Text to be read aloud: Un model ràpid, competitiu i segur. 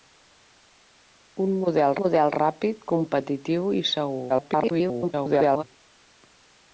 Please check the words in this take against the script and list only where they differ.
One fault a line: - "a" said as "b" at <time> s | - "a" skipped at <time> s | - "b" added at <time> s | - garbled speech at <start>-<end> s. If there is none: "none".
- "model" added at 2.0 s
- garbled speech at 4.3-5.6 s